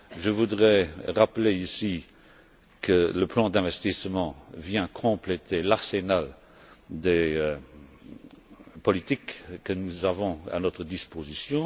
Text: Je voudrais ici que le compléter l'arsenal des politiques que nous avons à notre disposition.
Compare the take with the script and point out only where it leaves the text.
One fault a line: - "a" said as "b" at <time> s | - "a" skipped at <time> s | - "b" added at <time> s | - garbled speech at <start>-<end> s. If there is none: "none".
- "rappeler" added at 1.1 s
- "plan d'investissement vient" added at 3.3 s